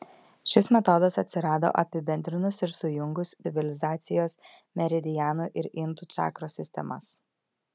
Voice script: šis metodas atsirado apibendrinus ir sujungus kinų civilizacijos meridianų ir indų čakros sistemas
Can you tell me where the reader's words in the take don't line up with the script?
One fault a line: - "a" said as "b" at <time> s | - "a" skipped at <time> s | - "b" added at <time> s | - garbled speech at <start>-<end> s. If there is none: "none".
- "kinų" skipped at 3.4 s